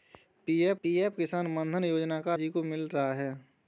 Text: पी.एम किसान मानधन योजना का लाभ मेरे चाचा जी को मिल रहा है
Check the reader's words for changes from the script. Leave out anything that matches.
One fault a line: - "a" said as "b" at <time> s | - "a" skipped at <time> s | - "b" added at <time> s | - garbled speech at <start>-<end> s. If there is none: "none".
- "पी.एम" added at 0.8 s
- "लाभ मेरे चाचा" skipped at 2.4 s